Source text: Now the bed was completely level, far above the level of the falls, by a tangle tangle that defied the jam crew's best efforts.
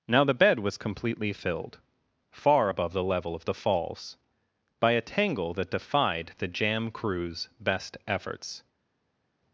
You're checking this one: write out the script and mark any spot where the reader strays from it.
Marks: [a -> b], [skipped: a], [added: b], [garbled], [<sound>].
Now the bed was completely [level, -> filled] far above the level of the falls, by a tangle [skipped: tangle] that defied the jam crew's best efforts.